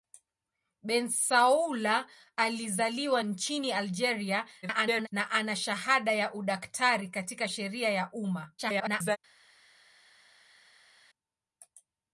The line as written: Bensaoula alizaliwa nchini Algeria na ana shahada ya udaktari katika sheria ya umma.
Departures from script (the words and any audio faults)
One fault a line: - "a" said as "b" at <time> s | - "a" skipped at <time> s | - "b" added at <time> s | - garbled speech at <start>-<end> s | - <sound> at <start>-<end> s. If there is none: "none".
- garbled speech at 4.6-5.1 s
- garbled speech at 8.6-9.2 s